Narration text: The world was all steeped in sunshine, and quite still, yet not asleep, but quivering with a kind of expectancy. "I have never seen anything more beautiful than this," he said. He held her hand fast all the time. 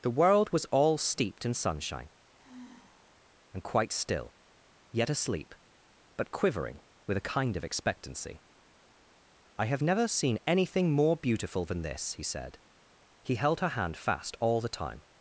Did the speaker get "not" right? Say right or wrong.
wrong